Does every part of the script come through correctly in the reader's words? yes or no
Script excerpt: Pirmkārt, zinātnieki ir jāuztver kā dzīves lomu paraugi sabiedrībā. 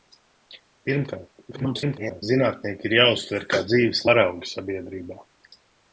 no